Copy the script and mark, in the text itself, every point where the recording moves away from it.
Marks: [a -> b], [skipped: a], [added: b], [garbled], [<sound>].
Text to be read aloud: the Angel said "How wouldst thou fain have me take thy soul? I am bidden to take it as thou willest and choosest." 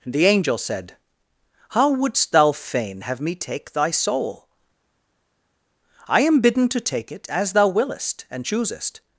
the Angel said "How wouldst thou fain have me take thy soul? I am bidden to take it as thou willest and choosest."